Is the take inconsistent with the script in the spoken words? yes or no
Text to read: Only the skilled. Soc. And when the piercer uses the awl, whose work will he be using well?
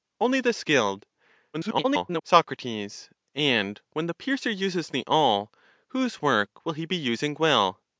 yes